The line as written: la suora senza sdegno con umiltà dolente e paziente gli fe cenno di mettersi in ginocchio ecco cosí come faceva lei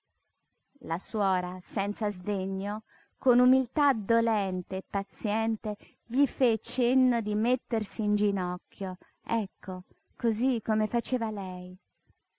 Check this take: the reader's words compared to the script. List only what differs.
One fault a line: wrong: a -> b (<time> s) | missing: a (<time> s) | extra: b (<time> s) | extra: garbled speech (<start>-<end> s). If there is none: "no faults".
no faults